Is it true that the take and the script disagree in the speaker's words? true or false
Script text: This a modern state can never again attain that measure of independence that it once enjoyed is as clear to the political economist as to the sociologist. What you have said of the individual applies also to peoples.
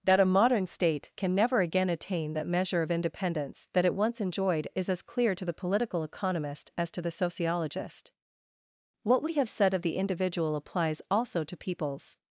true